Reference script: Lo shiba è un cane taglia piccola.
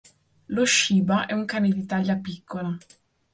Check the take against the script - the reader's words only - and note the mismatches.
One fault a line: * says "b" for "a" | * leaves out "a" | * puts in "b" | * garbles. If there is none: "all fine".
* puts in "di"